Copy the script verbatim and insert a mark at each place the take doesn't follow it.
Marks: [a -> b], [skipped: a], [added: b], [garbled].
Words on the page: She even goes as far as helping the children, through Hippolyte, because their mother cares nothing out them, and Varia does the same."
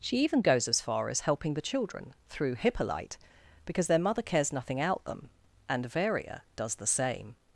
She even goes as far as helping the children, through Hippolyte, because their mother cares nothing out them, and Varia does the same."